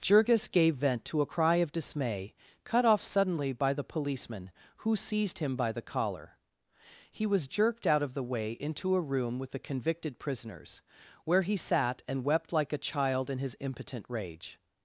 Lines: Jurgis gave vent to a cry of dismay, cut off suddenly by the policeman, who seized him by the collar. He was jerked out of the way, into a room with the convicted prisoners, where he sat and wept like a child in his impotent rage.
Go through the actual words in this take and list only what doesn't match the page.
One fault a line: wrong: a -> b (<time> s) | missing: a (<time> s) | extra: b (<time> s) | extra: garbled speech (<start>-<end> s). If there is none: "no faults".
no faults